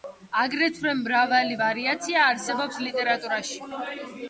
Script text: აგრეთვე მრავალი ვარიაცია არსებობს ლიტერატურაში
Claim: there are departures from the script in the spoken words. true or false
false